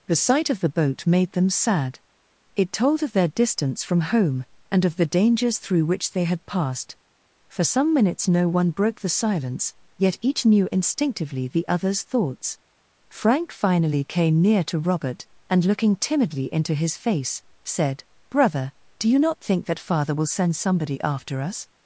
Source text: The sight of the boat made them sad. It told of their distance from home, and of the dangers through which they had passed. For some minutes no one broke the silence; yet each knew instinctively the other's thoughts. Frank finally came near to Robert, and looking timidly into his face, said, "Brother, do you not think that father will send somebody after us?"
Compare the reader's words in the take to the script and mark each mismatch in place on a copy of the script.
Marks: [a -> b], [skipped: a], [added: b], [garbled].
The sight of the boat made them sad. It told of their distance from home, and of the dangers through which they had passed. For some minutes no one broke the silence; yet each knew instinctively the other's thoughts. Frank finally came near to Robert, and looking timidly into his face, said, "Brother, do you not think that father will send somebody after us?"